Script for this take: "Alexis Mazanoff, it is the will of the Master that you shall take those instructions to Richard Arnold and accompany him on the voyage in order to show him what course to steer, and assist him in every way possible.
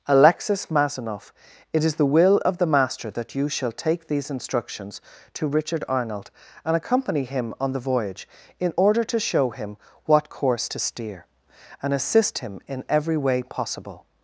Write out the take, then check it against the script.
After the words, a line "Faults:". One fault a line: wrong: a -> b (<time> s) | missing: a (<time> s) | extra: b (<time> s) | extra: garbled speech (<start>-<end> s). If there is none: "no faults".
"Alexis Mazanoff, it is the will of the Master that you shall take these instructions to Richard Arnold and accompany him on the voyage in order to show him what course to steer, and assist him in every way possible.
Faults:
wrong: those -> these (4.1 s)